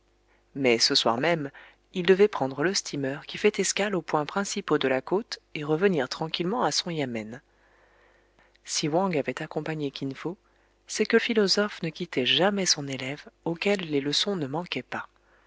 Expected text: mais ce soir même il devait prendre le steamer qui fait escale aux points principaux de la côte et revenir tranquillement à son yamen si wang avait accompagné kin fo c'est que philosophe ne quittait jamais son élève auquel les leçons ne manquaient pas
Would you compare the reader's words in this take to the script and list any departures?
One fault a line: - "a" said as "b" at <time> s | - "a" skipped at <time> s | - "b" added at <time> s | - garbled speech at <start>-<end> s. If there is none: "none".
none